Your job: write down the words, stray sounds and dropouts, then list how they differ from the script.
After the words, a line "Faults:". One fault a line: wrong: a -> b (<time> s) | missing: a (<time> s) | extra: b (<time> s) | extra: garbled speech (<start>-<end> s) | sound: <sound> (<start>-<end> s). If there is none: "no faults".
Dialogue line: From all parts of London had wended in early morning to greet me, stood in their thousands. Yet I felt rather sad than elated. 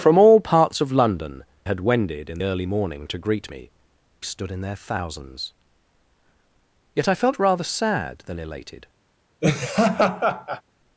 From all parts of London had wended in early morning to greet me, stood in their thousands. Yet I felt rather sad than elated.
Faults:
sound: laugh (9.4-10.6 s)